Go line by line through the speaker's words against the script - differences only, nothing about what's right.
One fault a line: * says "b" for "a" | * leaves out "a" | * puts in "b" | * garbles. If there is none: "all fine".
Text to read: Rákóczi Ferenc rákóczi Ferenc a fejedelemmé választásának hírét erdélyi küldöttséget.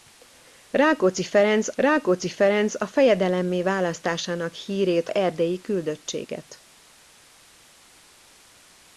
all fine